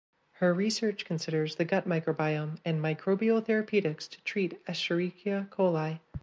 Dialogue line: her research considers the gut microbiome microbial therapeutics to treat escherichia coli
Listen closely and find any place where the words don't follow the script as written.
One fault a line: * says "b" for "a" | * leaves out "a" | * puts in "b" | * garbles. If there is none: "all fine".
* puts in "and"